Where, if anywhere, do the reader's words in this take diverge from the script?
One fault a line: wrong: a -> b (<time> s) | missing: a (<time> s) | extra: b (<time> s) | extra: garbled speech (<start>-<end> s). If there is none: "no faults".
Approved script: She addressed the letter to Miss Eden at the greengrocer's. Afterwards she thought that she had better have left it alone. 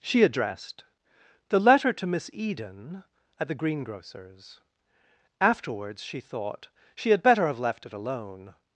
missing: that (6.7 s)